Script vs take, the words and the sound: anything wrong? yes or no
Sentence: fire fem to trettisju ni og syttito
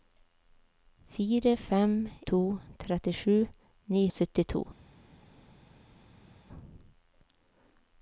no